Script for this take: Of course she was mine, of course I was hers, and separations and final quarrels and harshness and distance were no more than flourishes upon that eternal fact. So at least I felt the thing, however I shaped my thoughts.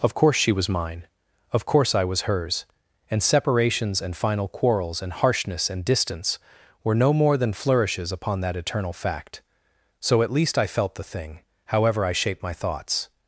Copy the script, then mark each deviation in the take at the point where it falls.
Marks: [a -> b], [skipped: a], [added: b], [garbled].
Of course she was mine, of course I was hers, and separations and final quarrels and harshness and distance were no more than flourishes upon that eternal fact. So at least I felt the thing, however I shaped my thoughts.